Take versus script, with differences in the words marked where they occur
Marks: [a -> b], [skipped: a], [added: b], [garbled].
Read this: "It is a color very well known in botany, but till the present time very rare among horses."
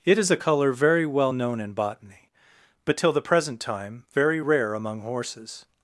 "It is a color very well known in botany, but till the present time very rare among horses."